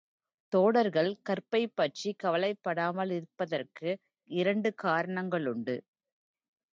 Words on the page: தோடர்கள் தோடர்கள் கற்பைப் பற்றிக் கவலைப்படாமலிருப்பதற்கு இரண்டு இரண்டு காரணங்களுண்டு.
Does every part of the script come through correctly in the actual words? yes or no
no